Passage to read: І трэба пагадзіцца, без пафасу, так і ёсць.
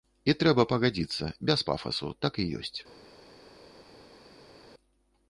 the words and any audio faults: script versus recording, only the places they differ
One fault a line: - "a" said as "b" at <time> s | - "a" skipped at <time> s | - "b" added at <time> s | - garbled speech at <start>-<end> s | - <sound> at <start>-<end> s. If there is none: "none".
none